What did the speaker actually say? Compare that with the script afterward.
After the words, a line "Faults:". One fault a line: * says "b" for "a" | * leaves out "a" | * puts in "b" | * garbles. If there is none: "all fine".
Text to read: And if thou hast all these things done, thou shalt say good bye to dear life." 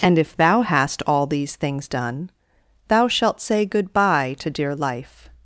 And if thou hast all these things done, thou shalt say good bye to dear life."
Faults:
all fine